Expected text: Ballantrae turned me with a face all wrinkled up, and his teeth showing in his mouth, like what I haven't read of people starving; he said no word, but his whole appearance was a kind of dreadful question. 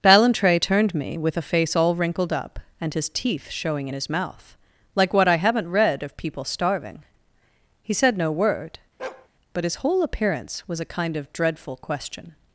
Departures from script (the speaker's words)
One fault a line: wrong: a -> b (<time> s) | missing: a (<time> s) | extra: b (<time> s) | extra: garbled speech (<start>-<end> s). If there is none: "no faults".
no faults